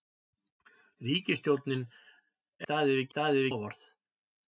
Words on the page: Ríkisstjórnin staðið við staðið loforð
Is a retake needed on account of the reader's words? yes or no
no